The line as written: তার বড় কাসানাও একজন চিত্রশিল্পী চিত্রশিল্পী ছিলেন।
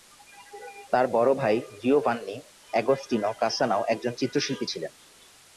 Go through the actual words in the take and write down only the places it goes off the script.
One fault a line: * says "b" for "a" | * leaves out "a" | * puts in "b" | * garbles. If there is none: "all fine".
* puts in "ভাই জিওভান্নি অ্যাগোস্টিনো"
* leaves out "চিত্রশিল্পী"